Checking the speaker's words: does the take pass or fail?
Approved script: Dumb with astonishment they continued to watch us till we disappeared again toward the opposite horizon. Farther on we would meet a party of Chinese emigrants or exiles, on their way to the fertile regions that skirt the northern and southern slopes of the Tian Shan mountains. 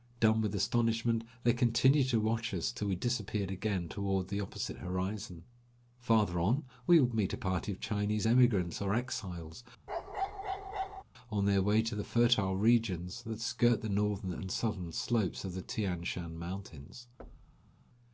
pass